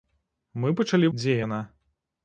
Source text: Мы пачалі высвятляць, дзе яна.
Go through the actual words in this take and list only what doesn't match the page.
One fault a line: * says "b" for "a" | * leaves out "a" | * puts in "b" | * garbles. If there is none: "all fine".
* leaves out "высвятляць"